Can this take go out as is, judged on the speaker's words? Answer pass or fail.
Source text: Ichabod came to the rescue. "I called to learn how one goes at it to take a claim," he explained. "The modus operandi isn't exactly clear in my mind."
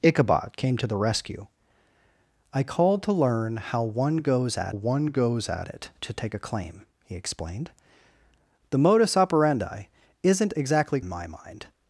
fail